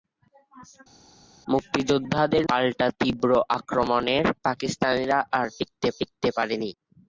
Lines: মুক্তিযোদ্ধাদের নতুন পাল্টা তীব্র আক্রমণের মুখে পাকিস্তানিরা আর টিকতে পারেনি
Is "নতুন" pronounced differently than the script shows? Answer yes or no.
yes